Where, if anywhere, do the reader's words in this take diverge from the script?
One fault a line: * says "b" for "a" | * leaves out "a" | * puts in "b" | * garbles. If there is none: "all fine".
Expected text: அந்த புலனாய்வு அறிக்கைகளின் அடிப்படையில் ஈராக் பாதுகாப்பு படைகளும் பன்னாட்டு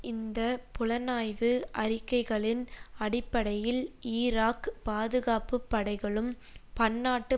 * says "இந்த" for "அந்த"